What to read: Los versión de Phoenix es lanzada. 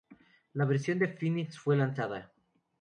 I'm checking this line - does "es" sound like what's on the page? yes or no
no